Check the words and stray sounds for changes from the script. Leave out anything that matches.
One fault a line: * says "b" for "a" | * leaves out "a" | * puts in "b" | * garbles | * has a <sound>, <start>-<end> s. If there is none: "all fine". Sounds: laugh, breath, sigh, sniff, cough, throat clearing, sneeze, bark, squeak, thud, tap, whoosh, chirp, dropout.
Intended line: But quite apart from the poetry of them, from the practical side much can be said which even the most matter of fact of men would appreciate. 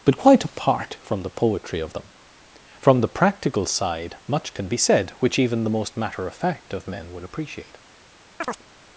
* has a chirp, 8.4-8.6 s